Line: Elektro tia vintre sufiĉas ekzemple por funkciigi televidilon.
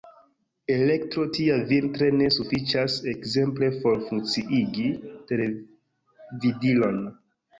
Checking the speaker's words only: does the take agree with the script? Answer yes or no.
no